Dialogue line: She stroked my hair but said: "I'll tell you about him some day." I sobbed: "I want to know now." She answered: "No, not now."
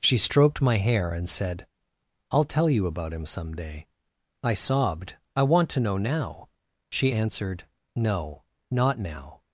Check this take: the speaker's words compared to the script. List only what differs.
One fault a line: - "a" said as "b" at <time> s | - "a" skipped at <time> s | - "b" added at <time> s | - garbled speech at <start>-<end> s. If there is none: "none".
- "but" said as "and" at 1.1 s